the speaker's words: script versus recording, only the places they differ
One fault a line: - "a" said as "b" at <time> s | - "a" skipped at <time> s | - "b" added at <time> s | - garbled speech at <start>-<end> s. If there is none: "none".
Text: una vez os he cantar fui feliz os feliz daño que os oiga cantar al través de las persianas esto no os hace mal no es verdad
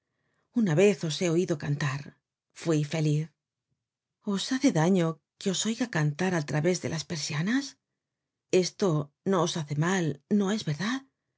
- "oido" added at 1.4 s
- "feliz" said as "hace" at 4.5 s